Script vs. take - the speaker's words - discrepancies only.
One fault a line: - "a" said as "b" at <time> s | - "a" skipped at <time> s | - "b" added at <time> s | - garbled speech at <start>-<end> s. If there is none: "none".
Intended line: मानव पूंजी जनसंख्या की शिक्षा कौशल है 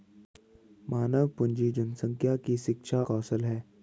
none